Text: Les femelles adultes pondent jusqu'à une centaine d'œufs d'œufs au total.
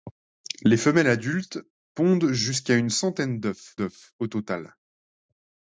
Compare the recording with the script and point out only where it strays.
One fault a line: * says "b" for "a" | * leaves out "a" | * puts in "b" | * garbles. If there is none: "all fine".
all fine